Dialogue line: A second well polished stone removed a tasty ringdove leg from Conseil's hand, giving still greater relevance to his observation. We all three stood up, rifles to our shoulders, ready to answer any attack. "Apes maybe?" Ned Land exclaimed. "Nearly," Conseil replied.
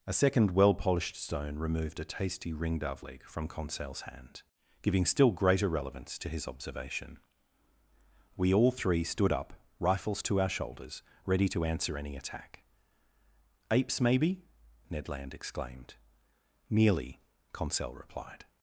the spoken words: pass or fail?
pass